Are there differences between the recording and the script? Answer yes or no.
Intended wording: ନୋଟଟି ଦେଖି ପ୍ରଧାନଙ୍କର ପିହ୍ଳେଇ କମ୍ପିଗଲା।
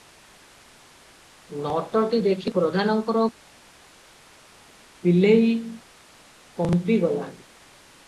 no